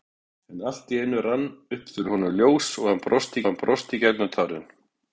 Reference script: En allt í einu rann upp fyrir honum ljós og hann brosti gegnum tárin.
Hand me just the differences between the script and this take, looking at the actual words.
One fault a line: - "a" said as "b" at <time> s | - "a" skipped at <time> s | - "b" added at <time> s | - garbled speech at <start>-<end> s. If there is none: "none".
- "hann brosti" added at 3.5 s